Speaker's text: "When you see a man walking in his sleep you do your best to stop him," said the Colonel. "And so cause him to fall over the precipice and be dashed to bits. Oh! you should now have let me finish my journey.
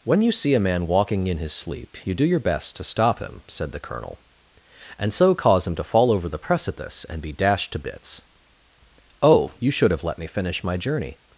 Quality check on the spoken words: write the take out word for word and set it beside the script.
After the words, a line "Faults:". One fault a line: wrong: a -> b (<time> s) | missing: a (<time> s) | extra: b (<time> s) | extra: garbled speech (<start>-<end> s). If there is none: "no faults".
"When you see a man walking in his sleep you do your best to stop him," said the Colonel. "And so cause him to fall over the precipice and be dashed to bits. Oh! you should have let me finish my journey.
Faults:
missing: now (9.9 s)